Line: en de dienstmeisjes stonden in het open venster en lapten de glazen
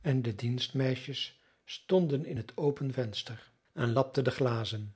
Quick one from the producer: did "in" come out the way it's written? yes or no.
yes